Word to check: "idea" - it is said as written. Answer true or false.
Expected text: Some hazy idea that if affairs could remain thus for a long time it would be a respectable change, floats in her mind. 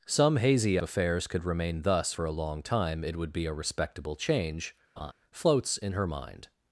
false